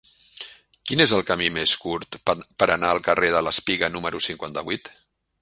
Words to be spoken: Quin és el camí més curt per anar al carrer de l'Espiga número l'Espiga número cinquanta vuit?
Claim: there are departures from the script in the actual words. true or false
true